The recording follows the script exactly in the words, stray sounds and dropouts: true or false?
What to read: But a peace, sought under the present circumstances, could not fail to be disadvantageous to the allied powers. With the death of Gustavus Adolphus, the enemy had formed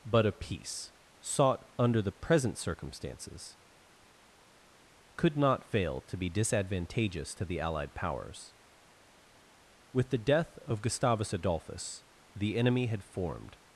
true